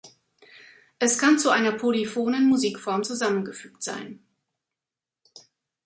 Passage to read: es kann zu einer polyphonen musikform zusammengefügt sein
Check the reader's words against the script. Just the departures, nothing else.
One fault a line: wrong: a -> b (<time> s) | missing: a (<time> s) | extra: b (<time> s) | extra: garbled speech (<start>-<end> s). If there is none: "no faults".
no faults